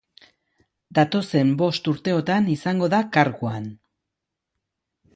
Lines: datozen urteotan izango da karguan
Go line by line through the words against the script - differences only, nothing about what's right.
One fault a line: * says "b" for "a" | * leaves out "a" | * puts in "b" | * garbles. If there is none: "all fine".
* puts in "bost"